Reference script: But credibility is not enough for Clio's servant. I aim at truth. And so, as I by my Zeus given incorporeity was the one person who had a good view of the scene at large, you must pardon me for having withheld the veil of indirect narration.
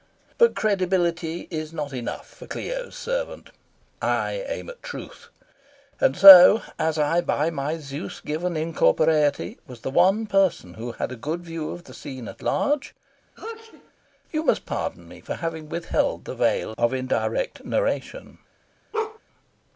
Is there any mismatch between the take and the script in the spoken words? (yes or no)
no